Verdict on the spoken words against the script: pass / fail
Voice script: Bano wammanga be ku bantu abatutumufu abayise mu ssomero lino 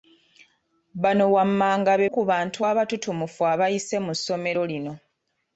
pass